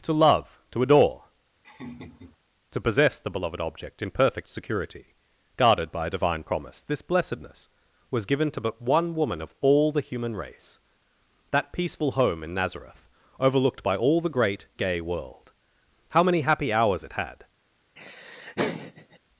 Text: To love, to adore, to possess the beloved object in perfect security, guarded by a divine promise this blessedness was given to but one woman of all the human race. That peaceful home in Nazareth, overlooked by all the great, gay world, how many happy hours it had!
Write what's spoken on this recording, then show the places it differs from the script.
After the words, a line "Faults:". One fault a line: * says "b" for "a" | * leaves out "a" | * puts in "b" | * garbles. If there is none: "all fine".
To love, to adore, to possess the beloved object in perfect security, guarded by a divine promise this blessedness was given to but one woman of all the human race. That peaceful home in Nazareth, overlooked by all the great, gay world, how many happy hours it had!
Faults:
all fine